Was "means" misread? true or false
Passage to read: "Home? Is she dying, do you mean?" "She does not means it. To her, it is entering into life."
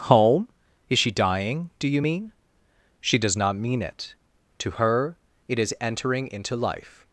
true